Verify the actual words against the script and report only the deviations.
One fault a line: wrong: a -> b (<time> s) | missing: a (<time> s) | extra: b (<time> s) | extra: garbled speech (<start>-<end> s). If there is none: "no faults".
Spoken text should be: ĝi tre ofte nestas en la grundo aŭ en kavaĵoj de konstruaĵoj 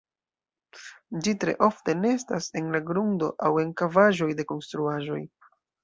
no faults